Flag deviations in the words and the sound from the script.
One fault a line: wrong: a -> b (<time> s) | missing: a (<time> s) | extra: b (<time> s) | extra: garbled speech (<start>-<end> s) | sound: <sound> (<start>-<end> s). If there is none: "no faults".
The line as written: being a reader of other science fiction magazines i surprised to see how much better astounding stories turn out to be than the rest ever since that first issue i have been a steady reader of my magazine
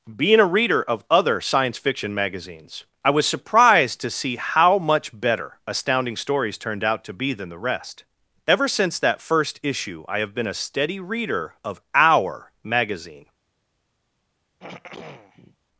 extra: was (3.1 s)
wrong: turn -> turned (6.6 s)
wrong: my -> our (11.9 s)
sound: throat clearing (14.6-15.6 s)